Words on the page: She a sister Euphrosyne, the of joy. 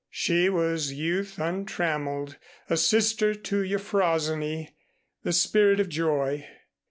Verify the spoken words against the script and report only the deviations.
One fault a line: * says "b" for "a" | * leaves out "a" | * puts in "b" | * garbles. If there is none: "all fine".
* puts in "was youth untrammeled"
* puts in "to"
* puts in "spirit"